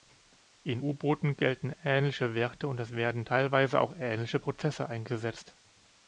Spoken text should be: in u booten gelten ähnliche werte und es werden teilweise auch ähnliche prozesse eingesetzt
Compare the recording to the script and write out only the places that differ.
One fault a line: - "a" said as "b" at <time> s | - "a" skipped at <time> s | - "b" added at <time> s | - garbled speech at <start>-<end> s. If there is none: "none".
none